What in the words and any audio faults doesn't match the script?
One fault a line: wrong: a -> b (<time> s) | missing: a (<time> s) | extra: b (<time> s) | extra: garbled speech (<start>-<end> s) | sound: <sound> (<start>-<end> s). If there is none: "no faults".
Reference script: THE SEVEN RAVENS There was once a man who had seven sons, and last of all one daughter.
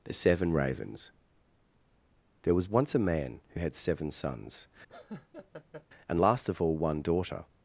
sound: laugh (4.9-5.9 s)